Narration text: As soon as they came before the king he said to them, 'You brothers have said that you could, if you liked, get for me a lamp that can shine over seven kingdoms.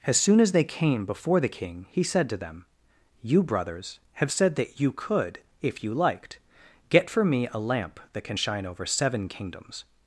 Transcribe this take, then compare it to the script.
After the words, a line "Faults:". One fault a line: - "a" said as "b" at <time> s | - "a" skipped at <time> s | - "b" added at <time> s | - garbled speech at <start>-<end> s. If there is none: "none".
As soon as they came before the king he said to them, 'You brothers have said that you could, if you liked, get for me a lamp that can shine over seven kingdoms.
Faults:
none